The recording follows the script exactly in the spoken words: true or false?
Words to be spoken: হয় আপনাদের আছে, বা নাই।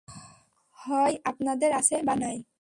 true